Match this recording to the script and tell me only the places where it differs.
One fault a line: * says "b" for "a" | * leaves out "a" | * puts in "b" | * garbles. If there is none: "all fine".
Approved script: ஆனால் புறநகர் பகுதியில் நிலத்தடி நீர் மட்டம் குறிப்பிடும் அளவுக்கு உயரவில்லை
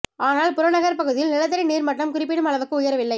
all fine